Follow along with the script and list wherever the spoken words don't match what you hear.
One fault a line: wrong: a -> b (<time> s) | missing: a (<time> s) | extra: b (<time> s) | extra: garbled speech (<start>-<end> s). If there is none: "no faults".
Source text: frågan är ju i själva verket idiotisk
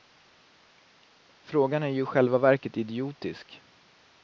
no faults